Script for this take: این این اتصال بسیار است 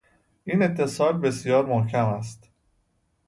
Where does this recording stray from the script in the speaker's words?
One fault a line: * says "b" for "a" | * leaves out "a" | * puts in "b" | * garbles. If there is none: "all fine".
* leaves out "این"
* puts in "محکم"